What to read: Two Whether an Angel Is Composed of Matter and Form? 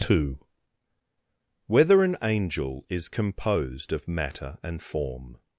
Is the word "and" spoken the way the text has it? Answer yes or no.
yes